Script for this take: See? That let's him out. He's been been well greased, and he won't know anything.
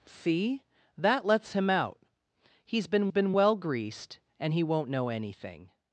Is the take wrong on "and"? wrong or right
right